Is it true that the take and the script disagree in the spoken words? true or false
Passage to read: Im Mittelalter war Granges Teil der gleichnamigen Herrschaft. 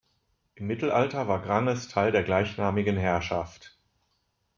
false